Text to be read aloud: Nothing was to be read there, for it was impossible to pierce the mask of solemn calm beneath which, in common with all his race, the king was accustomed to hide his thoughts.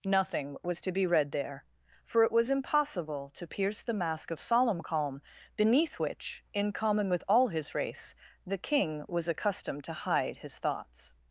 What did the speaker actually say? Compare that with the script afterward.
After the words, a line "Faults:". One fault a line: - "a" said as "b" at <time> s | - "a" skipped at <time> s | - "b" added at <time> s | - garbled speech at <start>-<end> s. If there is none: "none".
Nothing was to be read there, for it was impossible to pierce the mask of solemn calm beneath which, in common with all his race, the king was accustomed to hide his thoughts.
Faults:
none